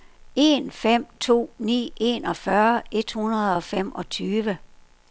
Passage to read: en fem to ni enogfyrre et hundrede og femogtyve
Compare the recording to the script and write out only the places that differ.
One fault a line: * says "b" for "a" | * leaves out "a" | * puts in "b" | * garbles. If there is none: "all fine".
all fine